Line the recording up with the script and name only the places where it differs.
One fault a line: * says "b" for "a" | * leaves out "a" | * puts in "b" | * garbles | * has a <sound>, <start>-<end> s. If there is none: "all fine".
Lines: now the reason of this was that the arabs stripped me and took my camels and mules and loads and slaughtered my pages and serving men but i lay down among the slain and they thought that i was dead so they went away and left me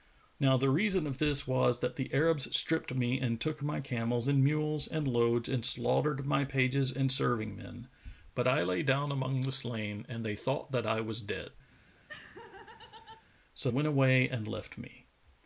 * has a laugh, 11.7-13.3 s
* leaves out "they"